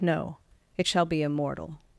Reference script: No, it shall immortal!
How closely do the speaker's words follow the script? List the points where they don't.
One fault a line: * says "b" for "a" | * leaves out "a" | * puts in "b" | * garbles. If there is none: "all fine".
* puts in "be"